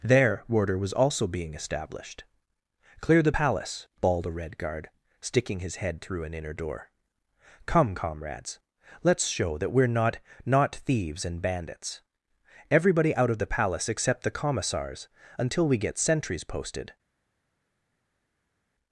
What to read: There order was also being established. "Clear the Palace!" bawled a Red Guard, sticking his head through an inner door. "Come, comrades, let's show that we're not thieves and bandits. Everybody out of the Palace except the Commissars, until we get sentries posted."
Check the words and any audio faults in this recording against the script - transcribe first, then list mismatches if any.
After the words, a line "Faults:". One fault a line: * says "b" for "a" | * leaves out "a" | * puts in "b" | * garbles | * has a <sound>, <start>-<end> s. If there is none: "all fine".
There order was also being established. "Clear the Palace!" bawled a Red Guard, sticking his head through an inner door. "Come, comrades, let's show that we're not not thieves and bandits. Everybody out of the Palace except the Commissars, until we get sentries posted."
Faults:
* puts in "not"